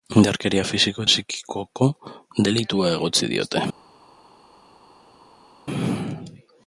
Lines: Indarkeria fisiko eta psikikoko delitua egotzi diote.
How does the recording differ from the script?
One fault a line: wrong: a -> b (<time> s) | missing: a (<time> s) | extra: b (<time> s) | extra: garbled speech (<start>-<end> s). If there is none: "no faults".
missing: eta (1.0 s)